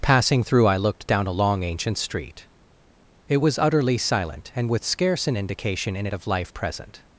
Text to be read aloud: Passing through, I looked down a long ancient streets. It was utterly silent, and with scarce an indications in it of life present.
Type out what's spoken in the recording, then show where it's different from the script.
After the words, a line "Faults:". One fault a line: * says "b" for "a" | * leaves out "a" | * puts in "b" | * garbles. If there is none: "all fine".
Passing through, I looked down a long ancient street. It was utterly silent, and with scarce an indication in it of life present.
Faults:
* says "street" for "streets"
* says "indication" for "indications"